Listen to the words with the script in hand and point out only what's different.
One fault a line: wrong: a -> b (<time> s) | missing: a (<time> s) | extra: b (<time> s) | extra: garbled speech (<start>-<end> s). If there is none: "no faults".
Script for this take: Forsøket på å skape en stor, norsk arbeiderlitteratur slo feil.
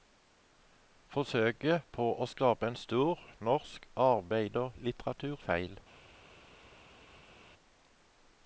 missing: slo (5.4 s)